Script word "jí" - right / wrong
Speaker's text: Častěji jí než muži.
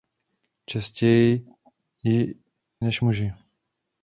right